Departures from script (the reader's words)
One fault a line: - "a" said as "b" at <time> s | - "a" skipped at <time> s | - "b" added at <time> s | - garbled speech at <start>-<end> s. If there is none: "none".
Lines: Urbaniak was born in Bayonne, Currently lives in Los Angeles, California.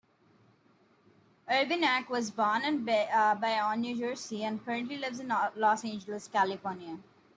- "New Jersey and" added at 3.8 s